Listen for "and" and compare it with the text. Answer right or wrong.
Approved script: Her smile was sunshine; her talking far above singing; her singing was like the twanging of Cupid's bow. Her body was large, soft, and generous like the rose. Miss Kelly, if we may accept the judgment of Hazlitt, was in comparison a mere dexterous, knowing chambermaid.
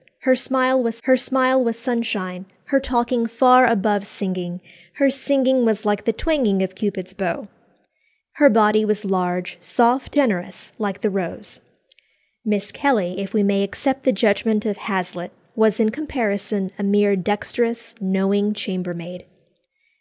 wrong